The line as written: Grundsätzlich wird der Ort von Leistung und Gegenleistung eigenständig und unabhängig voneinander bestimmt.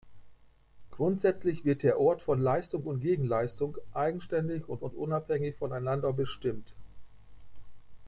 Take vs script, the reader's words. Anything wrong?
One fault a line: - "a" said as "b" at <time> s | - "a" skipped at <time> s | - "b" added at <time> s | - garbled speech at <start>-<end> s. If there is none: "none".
- "und" added at 4.8 s